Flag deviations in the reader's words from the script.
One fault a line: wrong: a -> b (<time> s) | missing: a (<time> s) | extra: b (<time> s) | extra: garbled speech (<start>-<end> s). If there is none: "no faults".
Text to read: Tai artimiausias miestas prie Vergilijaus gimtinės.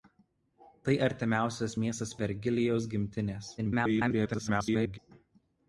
missing: prie (2.1 s)
extra: garbled speech (3.6-5.0 s)